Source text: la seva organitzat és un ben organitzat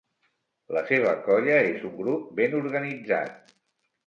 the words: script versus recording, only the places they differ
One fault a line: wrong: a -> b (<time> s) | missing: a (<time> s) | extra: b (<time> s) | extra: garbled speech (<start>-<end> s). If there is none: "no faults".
wrong: organitzat -> colla (1.3 s)
extra: grup (2.0 s)